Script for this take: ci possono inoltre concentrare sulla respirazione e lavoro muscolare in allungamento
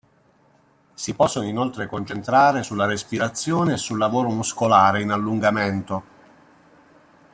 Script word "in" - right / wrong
right